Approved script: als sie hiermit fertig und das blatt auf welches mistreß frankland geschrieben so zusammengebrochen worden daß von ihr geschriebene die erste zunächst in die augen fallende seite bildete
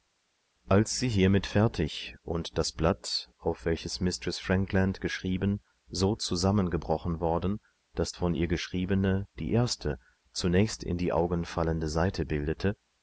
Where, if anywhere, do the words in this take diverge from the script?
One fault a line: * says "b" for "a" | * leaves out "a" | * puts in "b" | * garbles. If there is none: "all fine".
all fine